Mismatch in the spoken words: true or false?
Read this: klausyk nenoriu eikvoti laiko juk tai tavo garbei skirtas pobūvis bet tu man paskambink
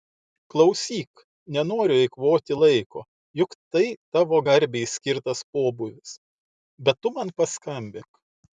false